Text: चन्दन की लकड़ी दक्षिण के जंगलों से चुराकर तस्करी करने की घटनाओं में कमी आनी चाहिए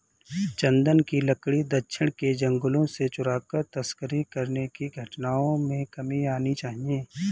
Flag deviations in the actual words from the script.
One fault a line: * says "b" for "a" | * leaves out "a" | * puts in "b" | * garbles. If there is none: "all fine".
all fine